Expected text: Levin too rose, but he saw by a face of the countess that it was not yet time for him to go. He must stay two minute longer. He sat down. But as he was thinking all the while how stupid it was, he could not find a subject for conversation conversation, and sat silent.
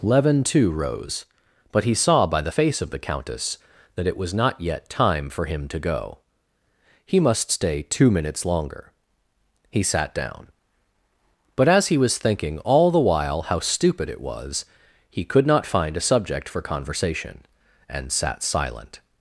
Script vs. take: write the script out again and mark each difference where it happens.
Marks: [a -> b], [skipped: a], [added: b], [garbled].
Levin too rose, but he saw by [a -> the] face of the countess that it was not yet time for him to go. He must stay two [minute -> minutes] longer. He sat down. But as he was thinking all the while how stupid it was, he could not find a subject for conversation [skipped: conversation,] and sat silent.